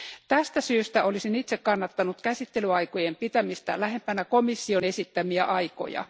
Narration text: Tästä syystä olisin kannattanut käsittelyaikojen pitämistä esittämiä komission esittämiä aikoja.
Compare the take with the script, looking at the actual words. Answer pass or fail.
fail